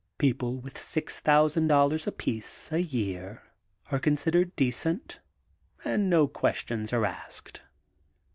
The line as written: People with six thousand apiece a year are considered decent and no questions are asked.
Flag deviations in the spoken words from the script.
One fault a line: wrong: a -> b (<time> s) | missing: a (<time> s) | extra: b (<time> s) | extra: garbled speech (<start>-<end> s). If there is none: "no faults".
extra: dollars (1.6 s)